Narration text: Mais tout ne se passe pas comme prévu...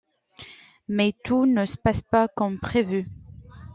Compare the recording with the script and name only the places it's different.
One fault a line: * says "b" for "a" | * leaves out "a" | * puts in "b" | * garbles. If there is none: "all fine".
all fine